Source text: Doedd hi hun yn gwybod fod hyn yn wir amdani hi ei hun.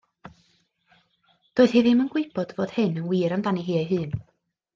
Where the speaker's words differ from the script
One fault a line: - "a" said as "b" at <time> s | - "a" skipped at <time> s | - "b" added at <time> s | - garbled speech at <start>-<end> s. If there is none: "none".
- "hun" said as "ddim" at 1.9 s